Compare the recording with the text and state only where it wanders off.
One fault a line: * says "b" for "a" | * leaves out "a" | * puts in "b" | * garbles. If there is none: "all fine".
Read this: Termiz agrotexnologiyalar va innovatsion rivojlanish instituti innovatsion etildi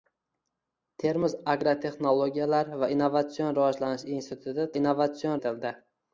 all fine